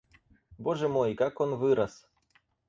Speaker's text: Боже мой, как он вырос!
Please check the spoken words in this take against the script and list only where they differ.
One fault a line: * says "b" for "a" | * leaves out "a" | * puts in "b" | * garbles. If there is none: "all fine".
all fine